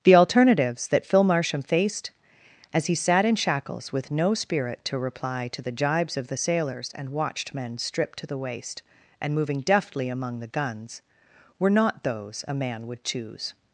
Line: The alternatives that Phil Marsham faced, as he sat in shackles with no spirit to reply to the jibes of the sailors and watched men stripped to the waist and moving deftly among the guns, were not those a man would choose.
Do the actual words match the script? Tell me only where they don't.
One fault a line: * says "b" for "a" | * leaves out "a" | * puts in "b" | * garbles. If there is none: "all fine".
all fine